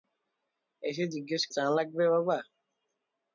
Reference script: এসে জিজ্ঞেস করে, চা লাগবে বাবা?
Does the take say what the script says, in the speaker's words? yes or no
no